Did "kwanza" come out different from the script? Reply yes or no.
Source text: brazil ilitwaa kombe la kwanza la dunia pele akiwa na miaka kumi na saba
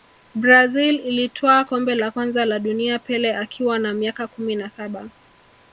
no